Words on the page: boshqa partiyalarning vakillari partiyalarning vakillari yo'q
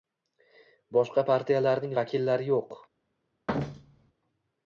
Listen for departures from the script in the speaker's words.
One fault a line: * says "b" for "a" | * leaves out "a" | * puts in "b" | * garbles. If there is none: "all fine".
* leaves out "partiyalarning vakillari"